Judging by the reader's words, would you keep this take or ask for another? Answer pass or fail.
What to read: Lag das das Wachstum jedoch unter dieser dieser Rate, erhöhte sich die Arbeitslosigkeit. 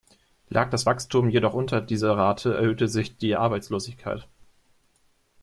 fail